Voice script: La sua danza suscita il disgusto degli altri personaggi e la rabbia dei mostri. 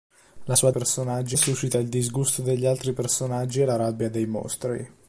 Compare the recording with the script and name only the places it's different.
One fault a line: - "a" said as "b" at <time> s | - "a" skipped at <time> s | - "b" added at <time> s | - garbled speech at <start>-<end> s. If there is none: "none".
- "danza" said as "personaggi" at 0.7 s